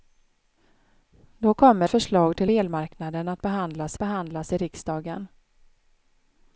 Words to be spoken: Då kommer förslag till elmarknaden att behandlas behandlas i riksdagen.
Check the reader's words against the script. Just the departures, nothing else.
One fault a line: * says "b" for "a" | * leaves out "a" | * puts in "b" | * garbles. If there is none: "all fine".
all fine